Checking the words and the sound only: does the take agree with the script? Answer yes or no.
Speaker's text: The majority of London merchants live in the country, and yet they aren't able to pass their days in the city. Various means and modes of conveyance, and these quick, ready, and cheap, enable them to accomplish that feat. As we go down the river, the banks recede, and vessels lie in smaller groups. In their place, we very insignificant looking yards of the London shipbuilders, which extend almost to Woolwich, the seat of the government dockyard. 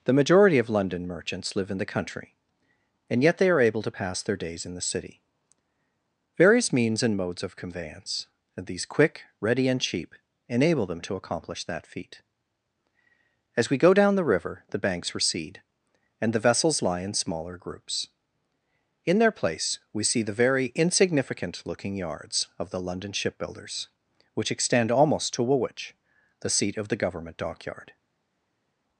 no